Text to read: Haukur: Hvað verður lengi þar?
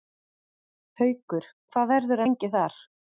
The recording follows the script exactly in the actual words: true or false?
true